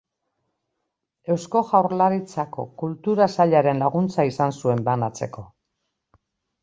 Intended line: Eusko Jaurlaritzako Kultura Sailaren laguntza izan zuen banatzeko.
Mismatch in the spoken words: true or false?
false